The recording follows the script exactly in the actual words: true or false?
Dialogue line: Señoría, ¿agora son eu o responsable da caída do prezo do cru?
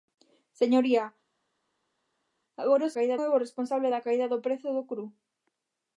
false